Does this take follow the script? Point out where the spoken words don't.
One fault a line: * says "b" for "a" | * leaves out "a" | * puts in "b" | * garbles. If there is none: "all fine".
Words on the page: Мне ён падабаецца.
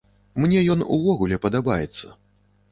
* puts in "увогуле"